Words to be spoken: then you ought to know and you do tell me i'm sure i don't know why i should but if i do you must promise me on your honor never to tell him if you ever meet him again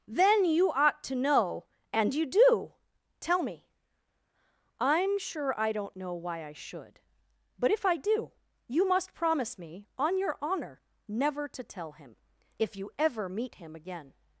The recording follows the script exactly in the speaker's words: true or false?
true